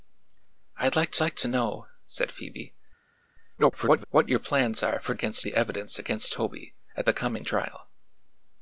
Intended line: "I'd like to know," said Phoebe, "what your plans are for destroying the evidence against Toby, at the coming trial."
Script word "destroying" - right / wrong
wrong